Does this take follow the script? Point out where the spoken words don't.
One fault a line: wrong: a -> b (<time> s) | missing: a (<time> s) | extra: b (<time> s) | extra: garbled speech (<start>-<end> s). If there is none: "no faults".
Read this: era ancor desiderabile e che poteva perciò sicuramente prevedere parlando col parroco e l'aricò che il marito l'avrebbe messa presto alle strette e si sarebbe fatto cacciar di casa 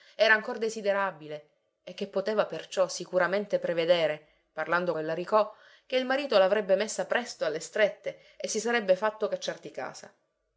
missing: col parroco (5.0 s)